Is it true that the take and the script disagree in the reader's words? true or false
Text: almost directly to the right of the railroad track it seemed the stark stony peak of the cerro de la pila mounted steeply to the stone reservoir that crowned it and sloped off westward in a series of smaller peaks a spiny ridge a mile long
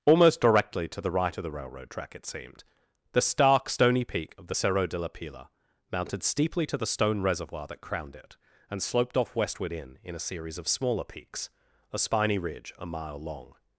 true